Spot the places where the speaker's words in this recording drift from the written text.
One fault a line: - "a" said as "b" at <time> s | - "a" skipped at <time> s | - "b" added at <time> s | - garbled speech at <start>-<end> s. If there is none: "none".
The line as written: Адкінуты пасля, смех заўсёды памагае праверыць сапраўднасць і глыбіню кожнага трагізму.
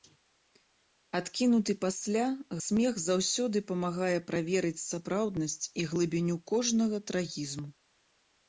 none